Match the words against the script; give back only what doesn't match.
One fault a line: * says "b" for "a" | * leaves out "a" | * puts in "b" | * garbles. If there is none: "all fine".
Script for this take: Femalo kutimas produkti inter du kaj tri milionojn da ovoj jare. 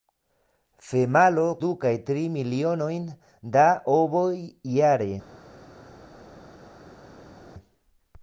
* leaves out "kutimas produkti inter"